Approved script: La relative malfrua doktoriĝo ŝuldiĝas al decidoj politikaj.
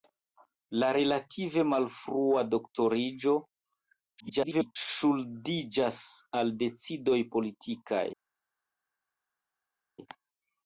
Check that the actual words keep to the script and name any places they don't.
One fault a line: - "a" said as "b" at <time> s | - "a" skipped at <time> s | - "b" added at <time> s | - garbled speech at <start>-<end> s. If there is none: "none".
- garbled speech at 4.2-4.8 s